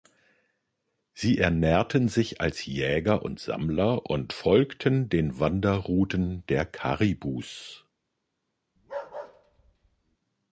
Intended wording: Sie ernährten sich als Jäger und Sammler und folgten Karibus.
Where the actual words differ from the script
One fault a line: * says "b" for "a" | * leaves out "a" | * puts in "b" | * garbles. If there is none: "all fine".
* puts in "den Wanderrouten der"